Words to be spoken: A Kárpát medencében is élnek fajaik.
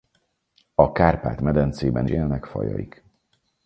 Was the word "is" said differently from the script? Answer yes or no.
yes